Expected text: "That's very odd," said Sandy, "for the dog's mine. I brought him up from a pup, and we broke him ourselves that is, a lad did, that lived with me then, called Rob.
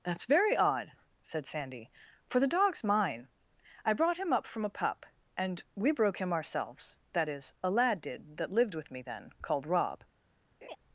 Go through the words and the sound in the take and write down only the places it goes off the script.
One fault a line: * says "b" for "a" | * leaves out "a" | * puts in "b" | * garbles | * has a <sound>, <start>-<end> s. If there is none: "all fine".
* has a laugh, 10.6-10.8 s